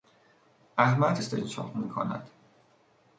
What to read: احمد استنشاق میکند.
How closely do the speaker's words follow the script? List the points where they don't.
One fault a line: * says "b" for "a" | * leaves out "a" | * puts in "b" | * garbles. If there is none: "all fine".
all fine